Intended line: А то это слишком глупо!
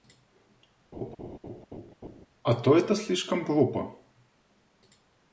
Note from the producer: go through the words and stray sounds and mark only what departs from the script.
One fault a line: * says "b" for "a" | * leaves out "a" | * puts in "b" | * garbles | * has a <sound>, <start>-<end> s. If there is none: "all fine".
* has a laugh, 0.9-2.3 s